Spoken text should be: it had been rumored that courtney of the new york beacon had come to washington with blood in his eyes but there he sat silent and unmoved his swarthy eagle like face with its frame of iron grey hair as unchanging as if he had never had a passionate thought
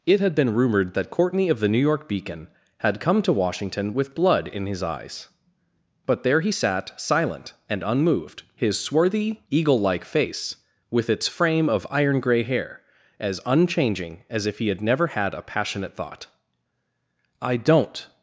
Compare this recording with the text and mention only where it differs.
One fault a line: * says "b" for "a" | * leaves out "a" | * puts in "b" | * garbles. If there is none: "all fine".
* puts in "i don't"